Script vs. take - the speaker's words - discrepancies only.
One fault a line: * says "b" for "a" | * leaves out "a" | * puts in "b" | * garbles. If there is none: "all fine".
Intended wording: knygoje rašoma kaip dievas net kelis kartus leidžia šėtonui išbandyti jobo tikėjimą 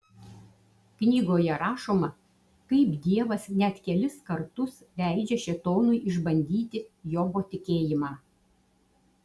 all fine